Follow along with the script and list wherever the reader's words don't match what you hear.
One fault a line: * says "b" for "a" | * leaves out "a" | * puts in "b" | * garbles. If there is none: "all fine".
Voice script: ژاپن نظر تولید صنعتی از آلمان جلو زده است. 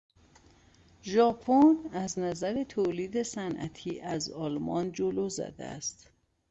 * puts in "از"